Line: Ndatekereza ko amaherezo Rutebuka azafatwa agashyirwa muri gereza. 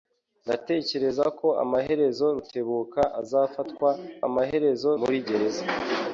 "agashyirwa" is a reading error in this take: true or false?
true